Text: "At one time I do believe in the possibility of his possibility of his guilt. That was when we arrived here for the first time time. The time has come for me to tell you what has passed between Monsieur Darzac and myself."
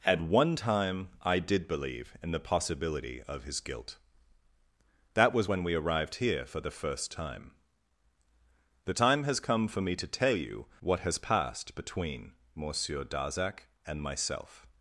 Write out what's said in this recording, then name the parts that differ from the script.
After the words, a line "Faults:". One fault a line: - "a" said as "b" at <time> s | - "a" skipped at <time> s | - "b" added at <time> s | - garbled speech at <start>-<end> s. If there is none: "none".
"At one time I did believe in the possibility of his guilt. That was when we arrived here for the first time. The time has come for me to tell you what has passed between Monsieur Darzac and myself."
Faults:
- "do" said as "did" at 1.4 s
- "possibility of his" skipped at 3.6 s
- "time" skipped at 7.5 s